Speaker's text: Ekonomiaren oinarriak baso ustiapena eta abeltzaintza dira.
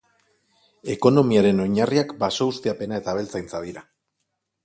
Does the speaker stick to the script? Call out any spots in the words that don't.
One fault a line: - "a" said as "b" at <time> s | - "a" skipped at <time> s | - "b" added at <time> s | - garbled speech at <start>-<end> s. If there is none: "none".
none